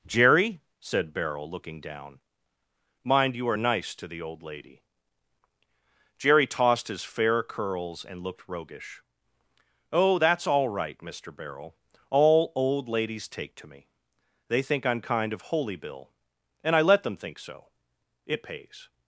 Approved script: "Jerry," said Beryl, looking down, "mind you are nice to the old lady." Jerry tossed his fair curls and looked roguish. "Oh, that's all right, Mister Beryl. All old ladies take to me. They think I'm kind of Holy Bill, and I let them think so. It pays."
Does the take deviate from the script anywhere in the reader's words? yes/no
no